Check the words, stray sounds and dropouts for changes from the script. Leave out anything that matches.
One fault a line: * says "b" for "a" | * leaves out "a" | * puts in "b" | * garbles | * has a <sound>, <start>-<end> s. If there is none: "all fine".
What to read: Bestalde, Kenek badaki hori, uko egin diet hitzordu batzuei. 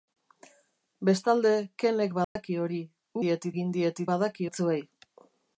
* has a dropout, 2.2-2.4 s
* says "diet" for "uko"
* says "badaki" for "hitzordu"